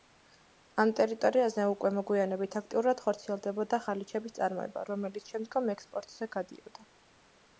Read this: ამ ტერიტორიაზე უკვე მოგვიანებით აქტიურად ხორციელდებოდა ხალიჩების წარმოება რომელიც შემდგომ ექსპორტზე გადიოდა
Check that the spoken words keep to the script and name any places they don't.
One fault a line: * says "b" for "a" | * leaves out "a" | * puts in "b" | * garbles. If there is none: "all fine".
all fine